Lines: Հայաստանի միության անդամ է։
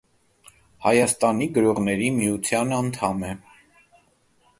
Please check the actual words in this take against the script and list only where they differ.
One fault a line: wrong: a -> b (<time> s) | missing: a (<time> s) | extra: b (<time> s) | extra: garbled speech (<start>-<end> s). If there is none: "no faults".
extra: գրողների (1.6 s)